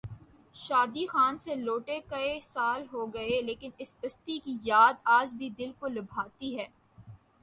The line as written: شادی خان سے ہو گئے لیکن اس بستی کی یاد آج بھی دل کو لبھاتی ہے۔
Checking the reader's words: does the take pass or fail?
fail